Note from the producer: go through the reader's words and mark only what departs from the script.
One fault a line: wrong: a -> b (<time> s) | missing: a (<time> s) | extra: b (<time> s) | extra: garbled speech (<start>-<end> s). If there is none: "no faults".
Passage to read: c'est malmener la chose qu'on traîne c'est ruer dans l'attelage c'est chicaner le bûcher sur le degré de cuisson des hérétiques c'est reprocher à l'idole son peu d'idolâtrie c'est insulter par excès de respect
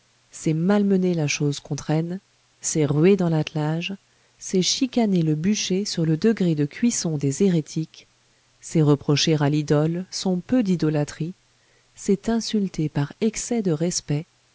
no faults